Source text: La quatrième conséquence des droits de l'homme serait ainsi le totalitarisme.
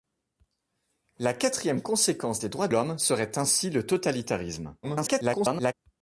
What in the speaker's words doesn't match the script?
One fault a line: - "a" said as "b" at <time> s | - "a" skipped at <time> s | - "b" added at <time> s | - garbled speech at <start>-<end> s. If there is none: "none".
- "de" skipped at 2.7 s
- garbled speech at 4.8-5.7 s